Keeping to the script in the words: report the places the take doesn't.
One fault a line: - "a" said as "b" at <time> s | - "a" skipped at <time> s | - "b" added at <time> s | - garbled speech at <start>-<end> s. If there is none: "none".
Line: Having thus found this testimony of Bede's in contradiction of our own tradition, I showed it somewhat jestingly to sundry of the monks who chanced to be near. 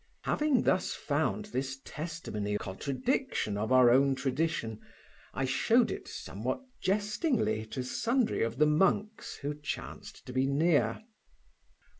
- "of Bede's in" skipped at 2.5 s